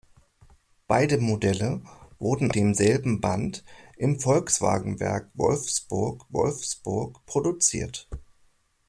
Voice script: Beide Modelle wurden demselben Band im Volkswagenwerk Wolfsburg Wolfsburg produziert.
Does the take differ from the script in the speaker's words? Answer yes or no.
no